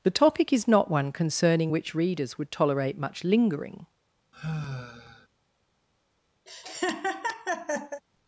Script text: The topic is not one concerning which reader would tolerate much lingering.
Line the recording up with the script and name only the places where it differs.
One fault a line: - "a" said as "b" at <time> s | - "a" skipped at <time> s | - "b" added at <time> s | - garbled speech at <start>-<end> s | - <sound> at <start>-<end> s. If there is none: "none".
- "reader" said as "readers" at 1.9 s
- sigh at 4.3-5.3 s
- laugh at 6.5-8.0 s